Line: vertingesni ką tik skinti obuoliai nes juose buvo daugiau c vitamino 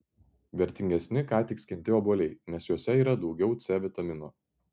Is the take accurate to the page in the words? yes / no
no